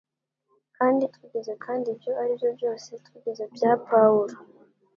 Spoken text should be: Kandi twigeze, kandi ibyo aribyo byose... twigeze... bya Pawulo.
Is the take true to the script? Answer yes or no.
yes